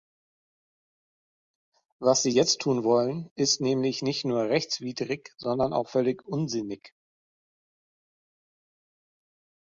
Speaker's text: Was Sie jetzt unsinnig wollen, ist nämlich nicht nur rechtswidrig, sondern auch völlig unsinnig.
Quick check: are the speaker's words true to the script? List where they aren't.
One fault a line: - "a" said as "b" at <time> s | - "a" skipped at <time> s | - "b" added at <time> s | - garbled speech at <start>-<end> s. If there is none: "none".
- "unsinnig" said as "tun" at 2.6 s